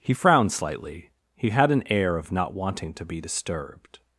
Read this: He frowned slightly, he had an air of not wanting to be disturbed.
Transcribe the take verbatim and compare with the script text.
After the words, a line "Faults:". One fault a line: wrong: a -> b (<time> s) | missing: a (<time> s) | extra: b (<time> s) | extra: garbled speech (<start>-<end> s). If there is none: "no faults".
He frowned slightly, he had an air of not wanting to be disturbed.
Faults:
no faults